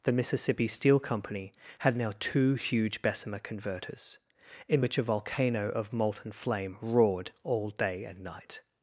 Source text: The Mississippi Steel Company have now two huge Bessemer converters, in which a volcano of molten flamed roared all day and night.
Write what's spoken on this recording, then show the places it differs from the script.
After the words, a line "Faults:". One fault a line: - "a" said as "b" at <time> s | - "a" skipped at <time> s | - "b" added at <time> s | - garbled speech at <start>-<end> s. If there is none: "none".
The Mississippi Steel Company had now two huge Bessemer converters, in which a volcano of molten flame roared all day and night.
Faults:
- "have" said as "had" at 1.8 s
- "flamed" said as "flame" at 6.3 s